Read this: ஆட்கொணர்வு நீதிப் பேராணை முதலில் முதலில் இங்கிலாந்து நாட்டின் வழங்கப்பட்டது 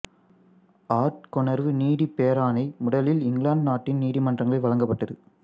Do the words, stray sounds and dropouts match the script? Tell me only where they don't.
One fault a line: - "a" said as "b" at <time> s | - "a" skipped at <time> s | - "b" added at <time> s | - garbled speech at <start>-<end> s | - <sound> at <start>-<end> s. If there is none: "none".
- "முதலில்" skipped at 3.2 s
- "நீதிமன்றங்களில்" added at 4.0 s